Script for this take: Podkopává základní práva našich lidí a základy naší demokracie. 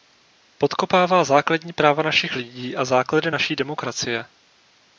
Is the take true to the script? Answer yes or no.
yes